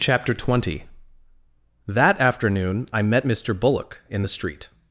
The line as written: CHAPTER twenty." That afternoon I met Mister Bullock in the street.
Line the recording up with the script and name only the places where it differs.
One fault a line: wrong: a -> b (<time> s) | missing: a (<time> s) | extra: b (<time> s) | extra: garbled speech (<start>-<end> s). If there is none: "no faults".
no faults